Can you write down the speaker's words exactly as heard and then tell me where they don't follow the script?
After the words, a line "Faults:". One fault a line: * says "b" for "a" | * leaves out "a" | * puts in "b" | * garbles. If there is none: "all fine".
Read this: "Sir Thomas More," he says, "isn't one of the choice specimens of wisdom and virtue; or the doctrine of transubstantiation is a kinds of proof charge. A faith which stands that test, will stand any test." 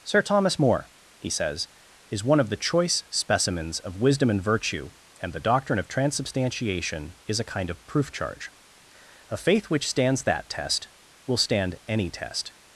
"Sir Thomas More," he says, "is one of the choice specimens of wisdom and virtue; and the doctrine of transubstantiation is a kind of proof charge. A faith which stands that test, will stand any test."
Faults:
* says "is" for "isn't"
* says "and" for "or"
* says "kind" for "kinds"